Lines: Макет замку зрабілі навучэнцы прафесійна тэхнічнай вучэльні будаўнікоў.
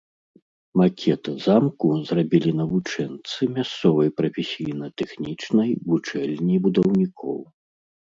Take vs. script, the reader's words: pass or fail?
fail